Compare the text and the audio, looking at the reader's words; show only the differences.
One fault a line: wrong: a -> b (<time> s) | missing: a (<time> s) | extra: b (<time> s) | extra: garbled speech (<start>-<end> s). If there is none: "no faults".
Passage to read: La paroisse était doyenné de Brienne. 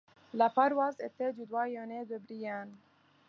extra: du (1.3 s)